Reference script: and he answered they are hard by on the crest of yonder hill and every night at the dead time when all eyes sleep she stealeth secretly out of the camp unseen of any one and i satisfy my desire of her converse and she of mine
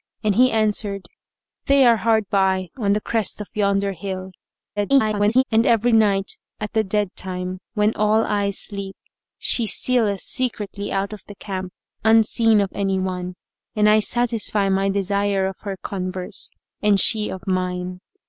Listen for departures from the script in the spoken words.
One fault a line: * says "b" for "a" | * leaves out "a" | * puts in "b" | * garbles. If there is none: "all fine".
* garbles